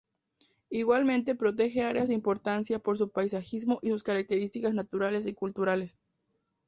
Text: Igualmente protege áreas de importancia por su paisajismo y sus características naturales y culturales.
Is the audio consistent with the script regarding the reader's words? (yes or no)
yes